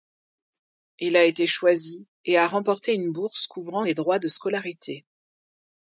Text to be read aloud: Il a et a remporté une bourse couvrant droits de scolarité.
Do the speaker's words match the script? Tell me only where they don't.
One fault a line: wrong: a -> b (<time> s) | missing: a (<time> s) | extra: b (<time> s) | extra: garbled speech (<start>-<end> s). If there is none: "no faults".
extra: été choisi (1.2 s)
extra: les (3.8 s)